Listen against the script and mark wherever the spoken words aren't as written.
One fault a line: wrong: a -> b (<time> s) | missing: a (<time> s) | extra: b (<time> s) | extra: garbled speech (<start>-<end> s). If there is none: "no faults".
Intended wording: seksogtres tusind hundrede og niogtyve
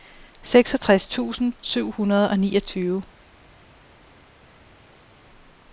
extra: syv (1.6 s)